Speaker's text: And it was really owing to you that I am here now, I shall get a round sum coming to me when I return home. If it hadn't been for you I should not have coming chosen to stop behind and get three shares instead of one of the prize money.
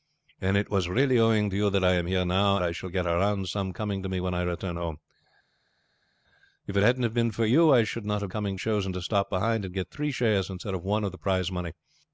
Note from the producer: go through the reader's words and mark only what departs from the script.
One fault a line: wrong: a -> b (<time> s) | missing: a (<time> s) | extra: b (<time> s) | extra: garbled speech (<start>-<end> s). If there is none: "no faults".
no faults